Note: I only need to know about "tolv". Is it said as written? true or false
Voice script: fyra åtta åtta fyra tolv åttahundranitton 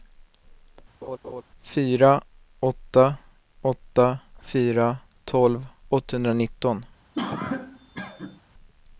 true